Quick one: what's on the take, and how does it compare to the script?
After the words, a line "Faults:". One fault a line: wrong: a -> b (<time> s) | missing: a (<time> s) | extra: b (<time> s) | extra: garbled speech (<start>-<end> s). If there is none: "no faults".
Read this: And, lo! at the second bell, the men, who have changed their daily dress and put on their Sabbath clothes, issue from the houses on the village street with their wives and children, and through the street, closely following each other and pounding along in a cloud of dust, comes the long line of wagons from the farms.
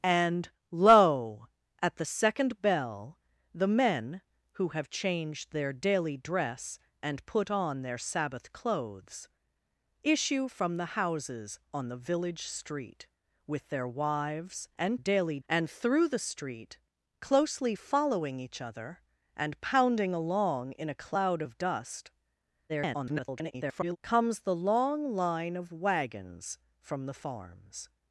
And, lo! at the second bell, the men, who have changed their daily dress and put on their Sabbath clothes, issue from the houses on the village street with their wives and daily, and through the street, closely following each other and pounding along in a cloud of dust, [garbled] comes the long line of wagons from the farms.
Faults:
wrong: children -> daily (14.9 s)
extra: garbled speech (22.7-24.0 s)